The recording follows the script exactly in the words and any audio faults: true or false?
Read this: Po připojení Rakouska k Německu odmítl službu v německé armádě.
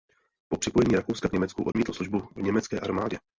false